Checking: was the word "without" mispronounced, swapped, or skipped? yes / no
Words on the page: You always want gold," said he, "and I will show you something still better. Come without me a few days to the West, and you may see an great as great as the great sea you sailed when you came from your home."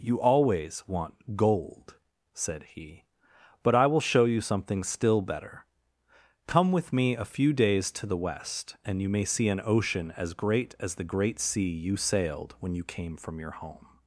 yes